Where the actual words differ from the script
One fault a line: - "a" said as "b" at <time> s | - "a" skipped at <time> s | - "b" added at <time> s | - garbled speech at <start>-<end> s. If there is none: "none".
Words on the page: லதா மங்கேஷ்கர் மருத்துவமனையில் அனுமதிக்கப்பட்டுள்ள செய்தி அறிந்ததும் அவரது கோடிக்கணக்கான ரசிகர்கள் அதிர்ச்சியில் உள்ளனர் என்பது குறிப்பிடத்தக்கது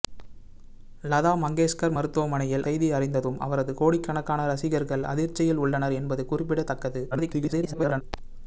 - "அனுமதிக்கப்பட்டுள்ள" skipped at 2.6 s
- garbled speech at 7.1-8.0 s